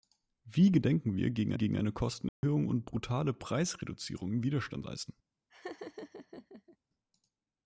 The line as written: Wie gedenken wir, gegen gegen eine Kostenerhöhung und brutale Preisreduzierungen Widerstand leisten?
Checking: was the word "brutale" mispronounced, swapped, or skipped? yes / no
no